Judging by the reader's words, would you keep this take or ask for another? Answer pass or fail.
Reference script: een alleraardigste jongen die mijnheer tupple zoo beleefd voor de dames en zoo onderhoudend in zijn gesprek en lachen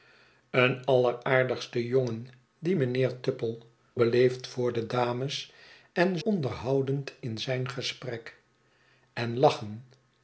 fail